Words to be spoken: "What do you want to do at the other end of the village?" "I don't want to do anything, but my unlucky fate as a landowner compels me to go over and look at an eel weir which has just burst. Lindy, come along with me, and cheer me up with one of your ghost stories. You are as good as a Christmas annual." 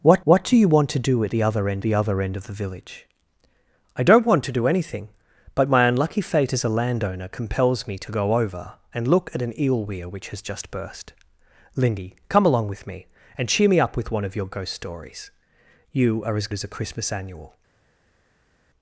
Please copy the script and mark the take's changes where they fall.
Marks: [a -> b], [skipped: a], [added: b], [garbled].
"What [added: what] do you want to do at the other end [added: the other end] of the village?" "I don't want to do anything, but my unlucky fate as a landowner compels me to go over and look at an eel weir which has just burst. Lindy, come along with me, and cheer me up with one of your ghost stories. You are as [skipped: good] as a Christmas annual."